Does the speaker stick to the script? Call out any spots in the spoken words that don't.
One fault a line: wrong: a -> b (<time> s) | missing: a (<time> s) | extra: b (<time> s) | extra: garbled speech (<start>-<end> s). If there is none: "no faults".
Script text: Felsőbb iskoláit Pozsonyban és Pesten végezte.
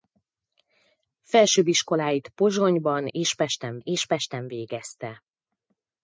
extra: és Pesten (3.8 s)